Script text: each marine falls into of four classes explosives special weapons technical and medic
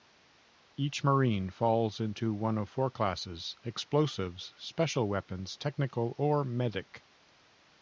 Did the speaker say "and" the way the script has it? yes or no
no